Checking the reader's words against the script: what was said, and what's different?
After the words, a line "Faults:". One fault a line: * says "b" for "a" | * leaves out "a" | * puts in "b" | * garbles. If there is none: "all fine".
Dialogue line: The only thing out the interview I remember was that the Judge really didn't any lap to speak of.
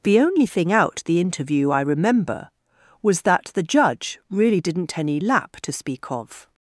The only thing out the interview I remember was that the Judge really didn't any lap to speak of.
Faults:
all fine